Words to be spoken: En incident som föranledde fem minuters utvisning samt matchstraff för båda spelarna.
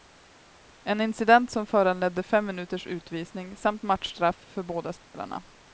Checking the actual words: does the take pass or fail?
pass